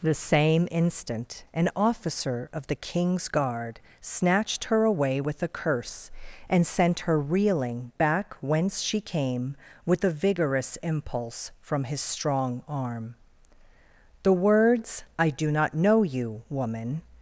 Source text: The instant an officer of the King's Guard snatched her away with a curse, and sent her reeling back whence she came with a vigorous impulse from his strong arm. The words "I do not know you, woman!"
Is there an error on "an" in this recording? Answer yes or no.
no